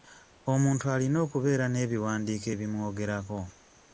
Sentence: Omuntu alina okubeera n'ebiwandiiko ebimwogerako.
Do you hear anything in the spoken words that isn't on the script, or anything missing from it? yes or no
no